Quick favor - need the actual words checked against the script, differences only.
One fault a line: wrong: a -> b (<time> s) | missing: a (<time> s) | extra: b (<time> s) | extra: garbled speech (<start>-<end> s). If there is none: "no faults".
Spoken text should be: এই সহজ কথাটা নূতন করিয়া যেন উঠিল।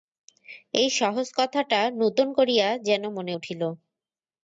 extra: মনে (3.2 s)